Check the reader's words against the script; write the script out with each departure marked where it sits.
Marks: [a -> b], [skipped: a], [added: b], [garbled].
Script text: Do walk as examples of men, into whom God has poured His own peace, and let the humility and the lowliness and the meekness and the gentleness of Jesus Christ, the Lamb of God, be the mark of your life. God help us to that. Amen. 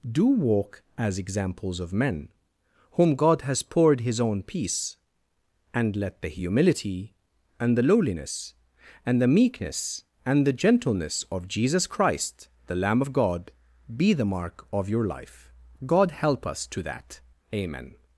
Do walk as examples of men, [skipped: into] whom God has poured His own peace, and let the humility and the lowliness and the meekness and the gentleness of Jesus Christ, the Lamb of God, be the mark of your life. God help us to that. Amen.